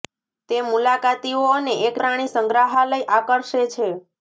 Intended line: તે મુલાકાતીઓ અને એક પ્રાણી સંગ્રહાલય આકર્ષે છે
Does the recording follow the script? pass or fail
pass